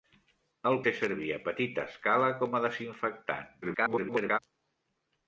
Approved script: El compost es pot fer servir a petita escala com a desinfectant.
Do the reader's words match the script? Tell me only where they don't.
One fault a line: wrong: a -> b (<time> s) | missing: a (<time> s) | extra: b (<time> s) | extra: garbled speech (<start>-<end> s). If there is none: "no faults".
missing: compost es pot (0.8 s)
extra: garbled speech (3.6-4.4 s)